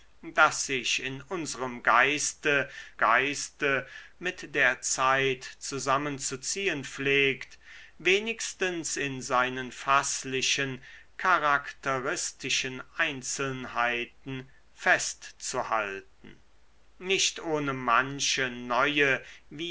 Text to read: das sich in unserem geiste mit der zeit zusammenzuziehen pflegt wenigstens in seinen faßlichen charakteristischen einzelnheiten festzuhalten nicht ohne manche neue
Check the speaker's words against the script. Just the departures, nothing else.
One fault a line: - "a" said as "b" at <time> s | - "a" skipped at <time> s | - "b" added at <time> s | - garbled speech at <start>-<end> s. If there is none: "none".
- "geiste" added at 3.0 s